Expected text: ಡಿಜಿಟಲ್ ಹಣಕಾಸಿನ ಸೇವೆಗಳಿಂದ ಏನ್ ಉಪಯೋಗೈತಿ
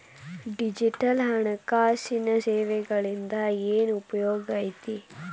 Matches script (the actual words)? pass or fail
pass